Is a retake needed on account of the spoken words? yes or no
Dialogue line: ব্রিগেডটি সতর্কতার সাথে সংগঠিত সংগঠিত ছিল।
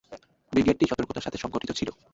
yes